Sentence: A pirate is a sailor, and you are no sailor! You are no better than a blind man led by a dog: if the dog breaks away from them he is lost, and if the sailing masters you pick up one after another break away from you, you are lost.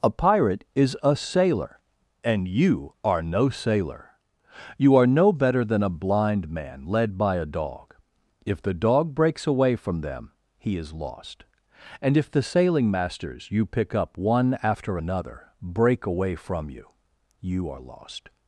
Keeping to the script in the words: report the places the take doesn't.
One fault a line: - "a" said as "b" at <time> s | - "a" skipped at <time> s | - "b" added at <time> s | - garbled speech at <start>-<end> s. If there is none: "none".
none